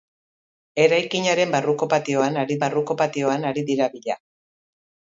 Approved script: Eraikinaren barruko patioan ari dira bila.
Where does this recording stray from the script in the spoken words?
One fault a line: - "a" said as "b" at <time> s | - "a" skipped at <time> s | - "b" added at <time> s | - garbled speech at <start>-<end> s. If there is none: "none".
- "barruko patioan ari" added at 2.7 s